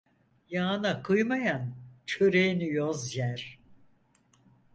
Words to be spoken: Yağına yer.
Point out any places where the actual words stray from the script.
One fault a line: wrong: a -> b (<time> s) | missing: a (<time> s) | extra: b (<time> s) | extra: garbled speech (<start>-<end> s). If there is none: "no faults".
extra: kıymayan çöreğini yoz (1.0 s)